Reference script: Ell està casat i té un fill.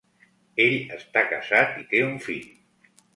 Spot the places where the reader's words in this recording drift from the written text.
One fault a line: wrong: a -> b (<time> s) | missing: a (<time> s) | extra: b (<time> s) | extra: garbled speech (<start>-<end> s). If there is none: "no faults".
no faults